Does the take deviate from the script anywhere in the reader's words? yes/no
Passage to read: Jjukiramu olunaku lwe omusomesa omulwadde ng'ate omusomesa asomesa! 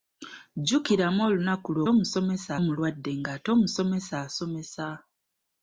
no